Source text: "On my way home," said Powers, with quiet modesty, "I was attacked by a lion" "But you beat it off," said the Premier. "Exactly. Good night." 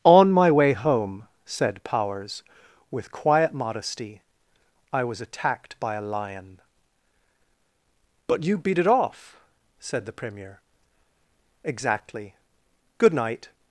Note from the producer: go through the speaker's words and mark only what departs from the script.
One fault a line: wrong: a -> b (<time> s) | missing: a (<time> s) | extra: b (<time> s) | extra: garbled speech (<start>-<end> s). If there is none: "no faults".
no faults